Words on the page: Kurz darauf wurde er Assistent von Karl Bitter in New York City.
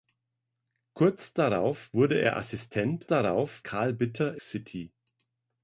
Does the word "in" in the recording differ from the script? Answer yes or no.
yes